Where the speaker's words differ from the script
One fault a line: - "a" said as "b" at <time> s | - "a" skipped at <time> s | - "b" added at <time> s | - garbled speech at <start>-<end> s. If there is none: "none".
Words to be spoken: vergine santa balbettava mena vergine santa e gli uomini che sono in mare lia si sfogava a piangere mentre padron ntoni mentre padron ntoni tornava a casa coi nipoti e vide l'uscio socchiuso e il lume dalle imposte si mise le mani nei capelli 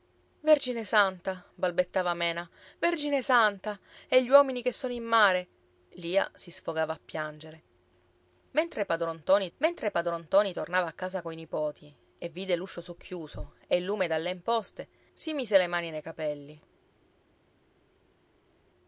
none